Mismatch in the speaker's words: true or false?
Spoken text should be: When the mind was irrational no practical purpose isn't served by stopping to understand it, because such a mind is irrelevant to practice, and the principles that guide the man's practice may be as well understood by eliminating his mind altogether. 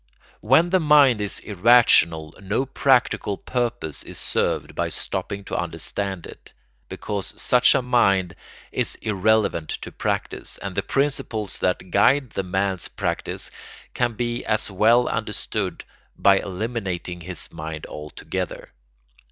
true